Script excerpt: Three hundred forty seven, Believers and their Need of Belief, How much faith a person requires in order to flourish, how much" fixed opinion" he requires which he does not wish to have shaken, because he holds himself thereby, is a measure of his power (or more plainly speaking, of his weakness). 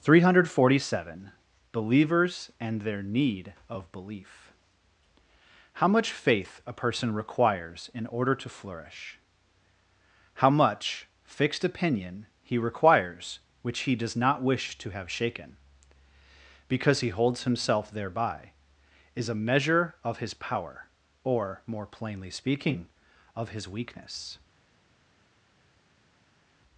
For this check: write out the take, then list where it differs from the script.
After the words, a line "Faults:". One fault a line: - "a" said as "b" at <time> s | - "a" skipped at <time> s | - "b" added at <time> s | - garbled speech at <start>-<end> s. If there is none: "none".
Three hundred forty seven, Believers and their Need of Belief, How much faith a person requires in order to flourish, how much" fixed opinion" he requires which he does not wish to have shaken, because he holds himself thereby, is a measure of his power (or more plainly speaking, of his weakness).
Faults:
none